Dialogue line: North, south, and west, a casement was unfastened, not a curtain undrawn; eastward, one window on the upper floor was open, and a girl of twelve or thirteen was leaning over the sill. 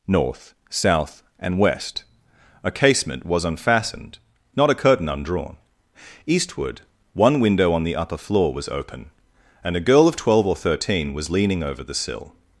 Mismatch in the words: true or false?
false